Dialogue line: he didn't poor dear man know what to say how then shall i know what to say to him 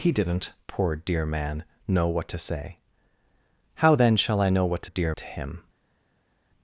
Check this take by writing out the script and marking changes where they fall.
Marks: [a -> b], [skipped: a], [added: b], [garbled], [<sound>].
he didn't poor dear man know what to say how then shall i know what to [say -> dear] to him